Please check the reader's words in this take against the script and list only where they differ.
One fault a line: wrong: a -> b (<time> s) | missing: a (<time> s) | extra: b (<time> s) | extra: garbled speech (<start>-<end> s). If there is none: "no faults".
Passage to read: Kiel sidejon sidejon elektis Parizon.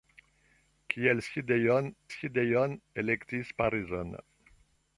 no faults